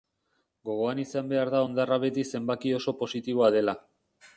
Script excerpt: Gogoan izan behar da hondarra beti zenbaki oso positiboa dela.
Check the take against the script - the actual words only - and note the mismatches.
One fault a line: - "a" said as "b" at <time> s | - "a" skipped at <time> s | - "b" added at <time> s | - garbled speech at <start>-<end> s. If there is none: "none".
none